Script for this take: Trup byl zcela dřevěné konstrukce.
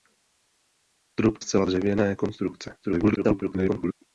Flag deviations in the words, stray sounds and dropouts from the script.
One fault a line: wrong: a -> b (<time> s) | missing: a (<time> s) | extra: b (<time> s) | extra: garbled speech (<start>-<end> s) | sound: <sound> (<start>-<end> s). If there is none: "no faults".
missing: byl (1.4 s)
extra: garbled speech (2.8-3.9 s)